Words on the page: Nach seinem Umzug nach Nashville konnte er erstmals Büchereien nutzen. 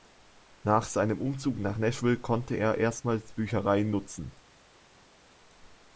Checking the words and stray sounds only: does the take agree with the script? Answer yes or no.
yes